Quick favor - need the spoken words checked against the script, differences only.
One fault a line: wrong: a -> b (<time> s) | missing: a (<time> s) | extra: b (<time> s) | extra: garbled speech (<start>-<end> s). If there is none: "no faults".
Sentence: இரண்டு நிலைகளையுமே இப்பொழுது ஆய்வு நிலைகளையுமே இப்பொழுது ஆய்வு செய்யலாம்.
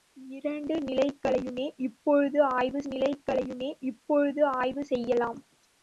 no faults